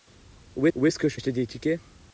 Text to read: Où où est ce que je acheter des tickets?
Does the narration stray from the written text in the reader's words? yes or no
no